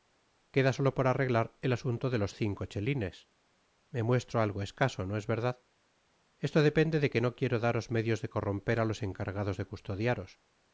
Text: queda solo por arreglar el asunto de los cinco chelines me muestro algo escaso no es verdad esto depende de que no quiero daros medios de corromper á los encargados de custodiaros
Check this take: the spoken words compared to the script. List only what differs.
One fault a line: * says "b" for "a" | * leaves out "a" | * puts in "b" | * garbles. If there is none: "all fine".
all fine